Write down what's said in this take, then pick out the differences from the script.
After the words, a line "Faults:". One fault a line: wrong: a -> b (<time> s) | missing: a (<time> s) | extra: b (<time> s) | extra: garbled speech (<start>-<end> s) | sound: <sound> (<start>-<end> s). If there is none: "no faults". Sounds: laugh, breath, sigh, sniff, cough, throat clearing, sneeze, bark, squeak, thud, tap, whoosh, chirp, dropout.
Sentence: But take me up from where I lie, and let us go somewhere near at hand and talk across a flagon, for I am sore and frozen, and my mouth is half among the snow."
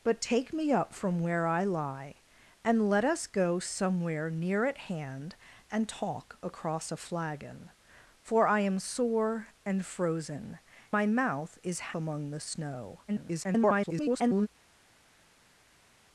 But take me up from where I lie, and let us go somewhere near at hand and talk across a flagon, for I am sore and frozen, my mouth is among the snow." [garbled]
Faults:
missing: and (10.6 s)
missing: half (11.9 s)
extra: garbled speech (13.1-14.5 s)